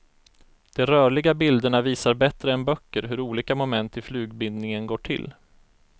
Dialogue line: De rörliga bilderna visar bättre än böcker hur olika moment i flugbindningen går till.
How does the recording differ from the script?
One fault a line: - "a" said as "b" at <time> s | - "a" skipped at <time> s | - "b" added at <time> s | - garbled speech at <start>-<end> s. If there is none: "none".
none